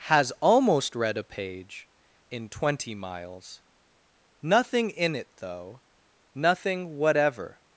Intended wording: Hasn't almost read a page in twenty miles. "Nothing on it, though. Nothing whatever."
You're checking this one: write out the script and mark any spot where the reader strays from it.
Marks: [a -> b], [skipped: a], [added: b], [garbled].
[Hasn't -> Has] almost read a page in twenty miles. "Nothing [on -> in] it, though. Nothing whatever."